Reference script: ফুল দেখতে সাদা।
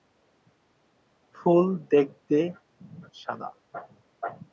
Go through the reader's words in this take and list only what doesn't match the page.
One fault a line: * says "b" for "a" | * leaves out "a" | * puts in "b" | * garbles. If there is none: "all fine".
all fine